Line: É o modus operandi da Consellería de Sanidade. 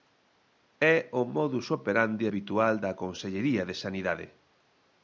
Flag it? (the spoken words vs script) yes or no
yes